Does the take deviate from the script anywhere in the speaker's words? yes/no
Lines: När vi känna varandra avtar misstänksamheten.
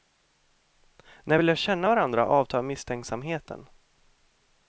yes